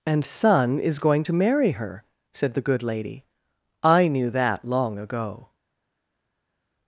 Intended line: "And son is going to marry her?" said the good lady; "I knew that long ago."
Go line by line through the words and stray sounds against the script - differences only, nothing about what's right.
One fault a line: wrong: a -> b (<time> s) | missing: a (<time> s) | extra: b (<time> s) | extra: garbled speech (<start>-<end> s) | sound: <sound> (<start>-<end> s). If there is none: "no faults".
no faults